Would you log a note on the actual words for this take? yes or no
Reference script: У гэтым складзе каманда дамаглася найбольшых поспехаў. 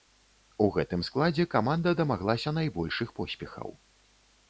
no